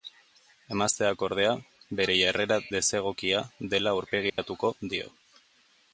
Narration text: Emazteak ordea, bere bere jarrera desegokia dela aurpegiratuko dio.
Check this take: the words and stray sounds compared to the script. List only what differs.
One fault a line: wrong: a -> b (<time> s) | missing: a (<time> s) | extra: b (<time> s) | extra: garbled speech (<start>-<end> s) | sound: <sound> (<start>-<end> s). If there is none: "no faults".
missing: bere (2.1 s)
sound: dropout (4.3-4.4 s)